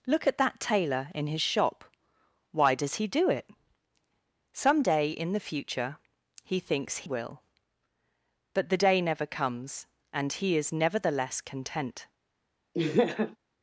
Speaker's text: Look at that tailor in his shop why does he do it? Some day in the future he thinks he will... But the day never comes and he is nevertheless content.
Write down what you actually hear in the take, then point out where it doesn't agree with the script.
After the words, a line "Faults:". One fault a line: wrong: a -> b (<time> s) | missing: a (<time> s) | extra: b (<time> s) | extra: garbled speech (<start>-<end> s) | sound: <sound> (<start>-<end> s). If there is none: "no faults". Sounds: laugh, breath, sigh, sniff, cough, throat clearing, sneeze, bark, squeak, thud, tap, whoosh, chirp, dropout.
Look at that tailor in his shop why does he do it? Some day in the future he thinks will... But the day never comes and he is nevertheless content.
Faults:
missing: he (7.0 s)
sound: laugh (12.7-13.4 s)